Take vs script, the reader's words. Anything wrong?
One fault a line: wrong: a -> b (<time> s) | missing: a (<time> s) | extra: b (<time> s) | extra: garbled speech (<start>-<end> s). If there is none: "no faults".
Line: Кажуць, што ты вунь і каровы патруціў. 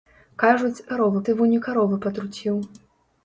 wrong: што -> каровы (0.9 s)